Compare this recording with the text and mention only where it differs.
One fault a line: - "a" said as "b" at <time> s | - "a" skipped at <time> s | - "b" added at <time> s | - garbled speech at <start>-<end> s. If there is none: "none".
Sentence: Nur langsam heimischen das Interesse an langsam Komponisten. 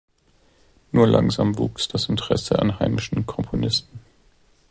- "heimischen" said as "wuchs" at 1.6 s
- "langsam" said as "heimischen" at 2.8 s